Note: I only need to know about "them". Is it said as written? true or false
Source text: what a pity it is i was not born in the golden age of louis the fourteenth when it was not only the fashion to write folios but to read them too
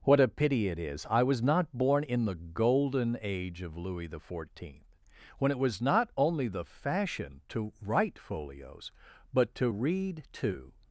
false